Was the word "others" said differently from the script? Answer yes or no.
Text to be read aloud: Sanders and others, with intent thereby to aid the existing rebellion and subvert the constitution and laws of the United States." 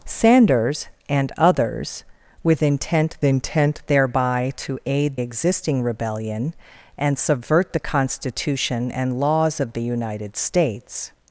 no